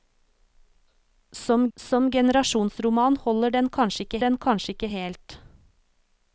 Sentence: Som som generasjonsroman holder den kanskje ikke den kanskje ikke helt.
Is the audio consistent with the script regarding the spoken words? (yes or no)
yes